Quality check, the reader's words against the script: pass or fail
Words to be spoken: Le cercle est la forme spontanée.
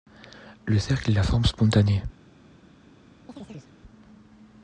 pass